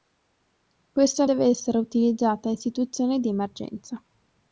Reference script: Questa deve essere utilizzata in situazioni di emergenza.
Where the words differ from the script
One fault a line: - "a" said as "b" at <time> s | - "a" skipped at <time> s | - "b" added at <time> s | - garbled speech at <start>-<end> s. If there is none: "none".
none